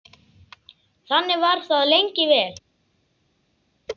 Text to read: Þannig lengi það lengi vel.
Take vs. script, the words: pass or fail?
fail